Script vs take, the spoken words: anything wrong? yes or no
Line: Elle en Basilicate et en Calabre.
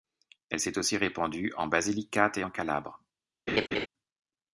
yes